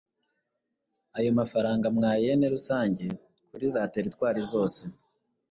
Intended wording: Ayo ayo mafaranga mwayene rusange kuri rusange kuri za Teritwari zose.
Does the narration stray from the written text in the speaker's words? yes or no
yes